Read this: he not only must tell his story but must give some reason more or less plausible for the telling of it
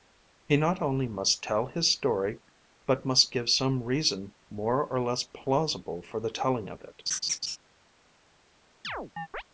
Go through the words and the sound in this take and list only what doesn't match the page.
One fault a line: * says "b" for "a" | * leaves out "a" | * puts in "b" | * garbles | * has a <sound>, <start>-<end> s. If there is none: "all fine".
* has a laugh, 7.1-7.6 s
* has a chirp, 8.8-9.4 s